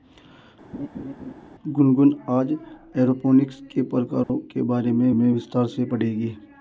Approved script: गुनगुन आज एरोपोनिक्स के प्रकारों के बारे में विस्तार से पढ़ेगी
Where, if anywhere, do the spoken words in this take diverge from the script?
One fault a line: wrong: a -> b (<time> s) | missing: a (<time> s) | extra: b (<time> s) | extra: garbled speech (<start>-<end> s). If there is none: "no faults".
extra: में (5.1 s)